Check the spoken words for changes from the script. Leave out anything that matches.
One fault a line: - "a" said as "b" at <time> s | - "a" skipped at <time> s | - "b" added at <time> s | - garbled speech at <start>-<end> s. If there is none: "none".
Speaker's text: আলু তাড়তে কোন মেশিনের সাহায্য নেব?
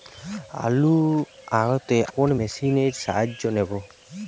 none